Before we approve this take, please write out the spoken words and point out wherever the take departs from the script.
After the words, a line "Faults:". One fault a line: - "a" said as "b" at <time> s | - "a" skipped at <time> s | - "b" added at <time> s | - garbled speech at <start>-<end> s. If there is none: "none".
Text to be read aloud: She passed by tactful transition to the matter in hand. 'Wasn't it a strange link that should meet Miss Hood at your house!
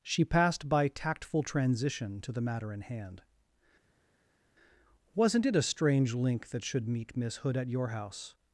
She passed by tactful transition to the matter in hand. 'Wasn't it a strange link that should meet Miss Hood at your house!
Faults:
none